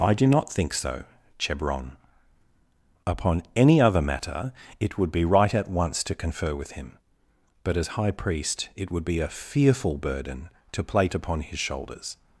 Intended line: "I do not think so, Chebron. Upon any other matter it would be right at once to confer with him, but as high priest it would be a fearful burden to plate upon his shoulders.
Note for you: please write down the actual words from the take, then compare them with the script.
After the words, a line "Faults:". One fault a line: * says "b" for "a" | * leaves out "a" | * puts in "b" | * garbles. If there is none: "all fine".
"I do not think so, Chebron. Upon any other matter it would be right at once to confer with him, but as high priest it would be a fearful burden to plate upon his shoulders.
Faults:
all fine